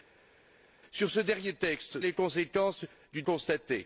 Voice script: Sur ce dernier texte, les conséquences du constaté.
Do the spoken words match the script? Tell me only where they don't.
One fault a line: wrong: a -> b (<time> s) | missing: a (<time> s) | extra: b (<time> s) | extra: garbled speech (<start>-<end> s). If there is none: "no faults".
no faults